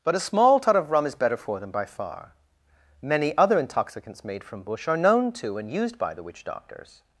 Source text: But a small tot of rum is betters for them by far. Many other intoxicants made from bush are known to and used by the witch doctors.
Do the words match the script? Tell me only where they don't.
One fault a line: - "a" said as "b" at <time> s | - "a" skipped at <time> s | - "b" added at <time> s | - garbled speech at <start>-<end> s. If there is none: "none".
- "betters" said as "better" at 1.1 s